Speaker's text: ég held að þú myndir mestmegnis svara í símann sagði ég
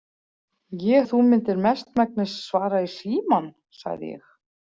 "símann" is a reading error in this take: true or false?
false